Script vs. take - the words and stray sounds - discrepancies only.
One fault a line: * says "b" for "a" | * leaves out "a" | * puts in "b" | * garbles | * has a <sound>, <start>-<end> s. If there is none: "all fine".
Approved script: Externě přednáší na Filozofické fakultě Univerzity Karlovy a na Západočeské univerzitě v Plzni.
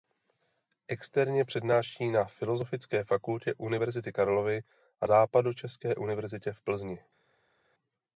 * leaves out "na"